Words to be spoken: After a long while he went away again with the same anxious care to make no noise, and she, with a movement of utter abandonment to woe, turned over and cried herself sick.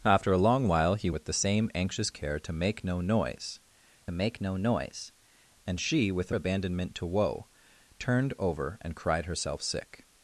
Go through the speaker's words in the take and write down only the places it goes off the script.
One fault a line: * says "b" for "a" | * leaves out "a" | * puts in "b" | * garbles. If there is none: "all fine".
* leaves out "went away again"
* puts in "make no noise"
* leaves out "movement of utter"